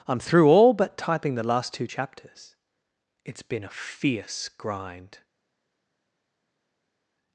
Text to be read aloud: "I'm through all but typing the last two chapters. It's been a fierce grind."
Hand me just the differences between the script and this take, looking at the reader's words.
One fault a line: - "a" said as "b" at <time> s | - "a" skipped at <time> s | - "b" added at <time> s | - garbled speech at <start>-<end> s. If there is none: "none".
none